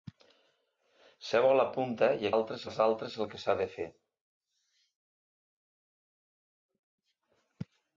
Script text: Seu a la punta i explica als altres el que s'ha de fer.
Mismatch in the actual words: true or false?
true